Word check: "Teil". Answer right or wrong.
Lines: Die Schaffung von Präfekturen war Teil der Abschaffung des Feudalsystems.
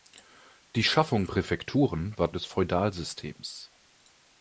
wrong